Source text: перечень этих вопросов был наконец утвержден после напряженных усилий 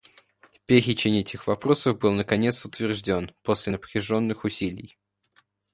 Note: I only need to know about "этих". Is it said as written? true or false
true